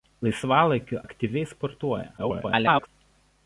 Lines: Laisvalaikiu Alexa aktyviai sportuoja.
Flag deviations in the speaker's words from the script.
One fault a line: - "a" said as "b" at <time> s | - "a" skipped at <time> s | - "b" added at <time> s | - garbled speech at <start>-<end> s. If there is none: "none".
- "Alexa" skipped at 1.0 s
- garbled speech at 2.2-2.9 s